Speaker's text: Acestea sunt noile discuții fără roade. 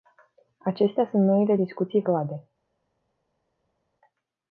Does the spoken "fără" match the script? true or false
false